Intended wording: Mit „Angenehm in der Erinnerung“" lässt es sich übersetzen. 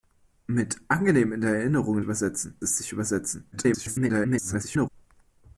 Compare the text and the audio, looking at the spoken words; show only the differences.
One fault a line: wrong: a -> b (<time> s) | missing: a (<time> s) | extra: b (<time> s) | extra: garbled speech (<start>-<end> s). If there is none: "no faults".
wrong: lässt -> übersetzen (2.0 s)
extra: garbled speech (3.5-4.9 s)